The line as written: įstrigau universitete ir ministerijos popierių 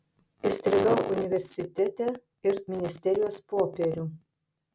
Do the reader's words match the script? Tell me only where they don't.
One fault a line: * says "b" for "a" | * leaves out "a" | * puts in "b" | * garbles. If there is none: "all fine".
all fine